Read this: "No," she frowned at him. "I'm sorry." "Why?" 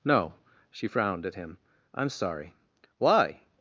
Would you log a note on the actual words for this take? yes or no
no